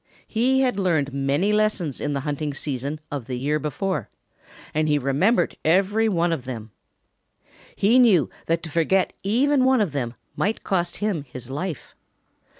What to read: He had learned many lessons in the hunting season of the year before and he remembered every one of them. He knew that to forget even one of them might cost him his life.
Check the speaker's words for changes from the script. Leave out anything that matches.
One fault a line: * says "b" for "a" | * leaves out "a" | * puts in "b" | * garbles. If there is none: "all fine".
all fine